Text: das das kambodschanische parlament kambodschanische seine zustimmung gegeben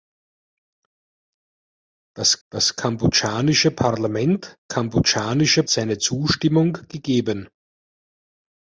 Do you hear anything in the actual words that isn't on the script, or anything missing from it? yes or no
no